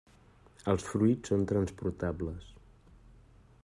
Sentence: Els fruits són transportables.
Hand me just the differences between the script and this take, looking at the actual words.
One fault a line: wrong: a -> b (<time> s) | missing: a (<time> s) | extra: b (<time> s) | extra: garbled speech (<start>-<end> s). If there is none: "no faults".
no faults